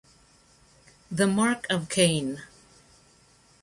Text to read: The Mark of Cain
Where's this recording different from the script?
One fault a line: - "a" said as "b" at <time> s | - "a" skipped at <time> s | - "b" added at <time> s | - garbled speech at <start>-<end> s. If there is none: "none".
none